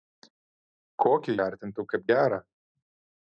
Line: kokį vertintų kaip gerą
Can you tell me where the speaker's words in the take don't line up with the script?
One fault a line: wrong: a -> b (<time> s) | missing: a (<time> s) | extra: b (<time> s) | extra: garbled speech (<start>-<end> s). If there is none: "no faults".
no faults